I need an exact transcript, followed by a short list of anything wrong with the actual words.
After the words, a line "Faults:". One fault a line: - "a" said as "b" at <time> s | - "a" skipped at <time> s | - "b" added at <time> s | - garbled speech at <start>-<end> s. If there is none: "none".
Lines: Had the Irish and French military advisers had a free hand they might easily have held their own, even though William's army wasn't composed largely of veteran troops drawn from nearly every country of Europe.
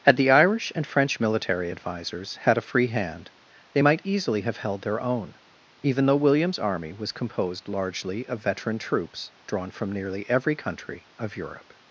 Had the Irish and French military advisers had a free hand they might easily have held their own, even though William's army was composed largely of veteran troops drawn from nearly every country of Europe.
Faults:
- "wasn't" said as "was" at 6.9 s